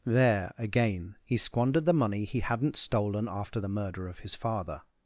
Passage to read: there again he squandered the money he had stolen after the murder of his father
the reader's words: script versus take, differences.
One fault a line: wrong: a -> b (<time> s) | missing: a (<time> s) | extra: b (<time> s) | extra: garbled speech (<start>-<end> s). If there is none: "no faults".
wrong: had -> hadn't (2.4 s)